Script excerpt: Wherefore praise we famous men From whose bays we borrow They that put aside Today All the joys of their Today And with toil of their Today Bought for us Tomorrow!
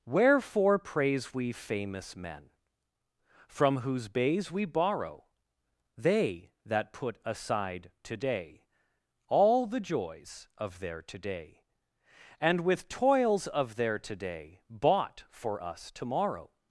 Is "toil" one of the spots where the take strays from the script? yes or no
yes